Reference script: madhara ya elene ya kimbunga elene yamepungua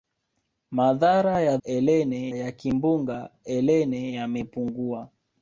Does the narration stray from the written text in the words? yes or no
no